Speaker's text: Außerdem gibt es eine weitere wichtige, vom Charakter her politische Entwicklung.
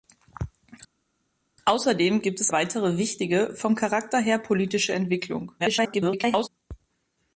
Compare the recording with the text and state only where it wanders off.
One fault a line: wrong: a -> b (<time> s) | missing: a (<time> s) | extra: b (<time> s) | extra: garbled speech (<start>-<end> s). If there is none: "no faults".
missing: eine (2.5 s)
extra: garbled speech (5.6-6.5 s)